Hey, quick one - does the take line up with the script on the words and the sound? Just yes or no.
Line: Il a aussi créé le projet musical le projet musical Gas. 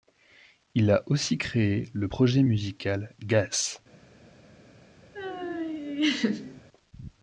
no